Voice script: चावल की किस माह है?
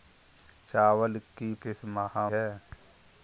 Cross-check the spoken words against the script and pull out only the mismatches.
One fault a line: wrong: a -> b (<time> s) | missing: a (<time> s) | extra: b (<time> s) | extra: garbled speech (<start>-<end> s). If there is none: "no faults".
no faults